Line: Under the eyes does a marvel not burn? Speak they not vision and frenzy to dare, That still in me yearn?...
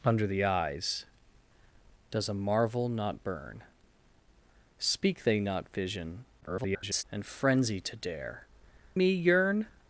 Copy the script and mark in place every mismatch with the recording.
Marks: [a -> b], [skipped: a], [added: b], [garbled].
Under the eyes does a marvel not burn? Speak they not vision [garbled] and frenzy to dare, [skipped: That still in] me yearn?...